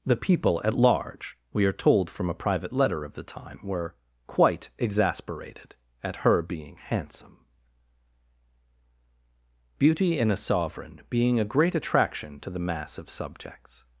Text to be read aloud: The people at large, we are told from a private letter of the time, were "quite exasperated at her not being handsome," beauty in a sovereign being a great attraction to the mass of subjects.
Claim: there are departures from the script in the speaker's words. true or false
true